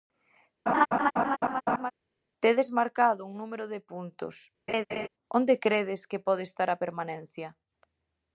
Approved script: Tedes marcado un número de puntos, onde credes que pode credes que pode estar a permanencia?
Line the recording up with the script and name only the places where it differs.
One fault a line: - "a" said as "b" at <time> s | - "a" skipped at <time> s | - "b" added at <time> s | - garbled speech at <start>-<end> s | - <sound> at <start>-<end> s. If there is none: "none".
- laugh at 0.7-1.9 s
- laugh at 4.7-5.1 s
- "credes que pode" skipped at 6.4 s